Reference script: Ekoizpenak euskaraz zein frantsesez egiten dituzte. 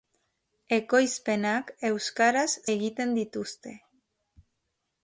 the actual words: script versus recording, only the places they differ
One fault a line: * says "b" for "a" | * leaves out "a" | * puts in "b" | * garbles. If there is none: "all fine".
* leaves out "zein frantsesez"